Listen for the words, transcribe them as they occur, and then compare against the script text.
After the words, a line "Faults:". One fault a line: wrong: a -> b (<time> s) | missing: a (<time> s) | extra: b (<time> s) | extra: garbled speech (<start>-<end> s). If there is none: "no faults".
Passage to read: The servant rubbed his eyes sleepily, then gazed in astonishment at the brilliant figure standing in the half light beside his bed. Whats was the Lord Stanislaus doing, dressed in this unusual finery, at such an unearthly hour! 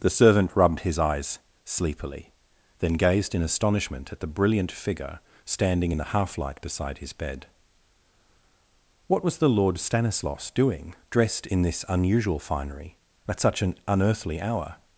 The servant rubbed his eyes sleepily, then gazed in astonishment at the brilliant figure standing in the half light beside his bed. What was the Lord Stanislaus doing, dressed in this unusual finery, at such an unearthly hour!
Faults:
wrong: Whats -> What (9.1 s)